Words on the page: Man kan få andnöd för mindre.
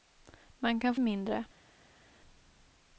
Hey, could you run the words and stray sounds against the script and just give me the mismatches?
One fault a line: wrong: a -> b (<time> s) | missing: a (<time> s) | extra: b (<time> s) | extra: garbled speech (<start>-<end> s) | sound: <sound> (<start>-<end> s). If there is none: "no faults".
missing: få andnöd för (0.9 s)